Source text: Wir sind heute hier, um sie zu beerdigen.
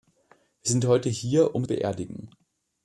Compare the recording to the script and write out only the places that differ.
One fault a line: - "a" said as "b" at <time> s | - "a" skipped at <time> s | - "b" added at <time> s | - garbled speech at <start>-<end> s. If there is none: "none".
- "sie zu" skipped at 1.7 s